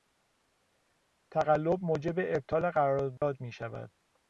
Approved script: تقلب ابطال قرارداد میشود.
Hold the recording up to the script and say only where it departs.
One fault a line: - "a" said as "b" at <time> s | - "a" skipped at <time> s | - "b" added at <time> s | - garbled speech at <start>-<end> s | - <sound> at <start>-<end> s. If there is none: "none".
- "موجب" added at 1.8 s
- dropout at 3.2-3.2 s